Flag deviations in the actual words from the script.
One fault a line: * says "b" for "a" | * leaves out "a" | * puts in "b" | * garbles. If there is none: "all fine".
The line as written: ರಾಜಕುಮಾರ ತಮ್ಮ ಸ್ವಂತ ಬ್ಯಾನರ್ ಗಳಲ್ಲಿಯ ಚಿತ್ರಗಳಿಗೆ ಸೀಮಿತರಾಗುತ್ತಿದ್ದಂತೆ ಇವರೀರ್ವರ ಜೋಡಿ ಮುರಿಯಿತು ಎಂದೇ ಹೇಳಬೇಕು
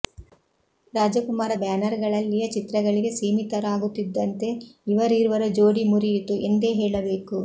* leaves out "ತಮ್ಮ ಸ್ವಂತ"